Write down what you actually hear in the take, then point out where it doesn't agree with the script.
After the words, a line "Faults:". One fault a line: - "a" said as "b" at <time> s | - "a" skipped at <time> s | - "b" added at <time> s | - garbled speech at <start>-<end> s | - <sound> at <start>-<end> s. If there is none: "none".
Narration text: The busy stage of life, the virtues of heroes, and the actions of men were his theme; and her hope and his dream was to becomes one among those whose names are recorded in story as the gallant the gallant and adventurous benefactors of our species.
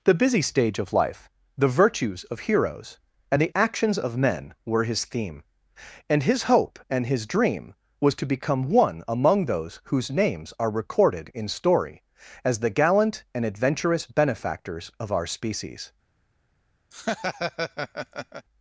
The busy stage of life, the virtues of heroes, and the actions of men were his theme; and his hope and his dream was to become one among those whose names are recorded in story as the gallant and adventurous benefactors of our species.
Faults:
- "her" said as "his" at 6.2 s
- "becomes" said as "become" at 8.3 s
- "the gallant" skipped at 13.2 s
- laugh at 16.9-18.5 s